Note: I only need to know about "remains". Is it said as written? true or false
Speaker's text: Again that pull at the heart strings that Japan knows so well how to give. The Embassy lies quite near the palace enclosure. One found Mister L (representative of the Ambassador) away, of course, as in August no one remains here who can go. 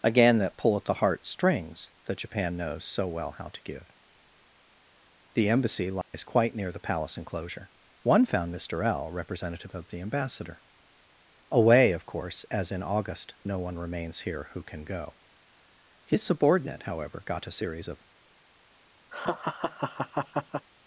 true